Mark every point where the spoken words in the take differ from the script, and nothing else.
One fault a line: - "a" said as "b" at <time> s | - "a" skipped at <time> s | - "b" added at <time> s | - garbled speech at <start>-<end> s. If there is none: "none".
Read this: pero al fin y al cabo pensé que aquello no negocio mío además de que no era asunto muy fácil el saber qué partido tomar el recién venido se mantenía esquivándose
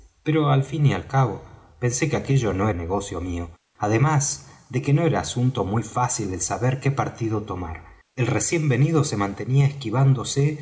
none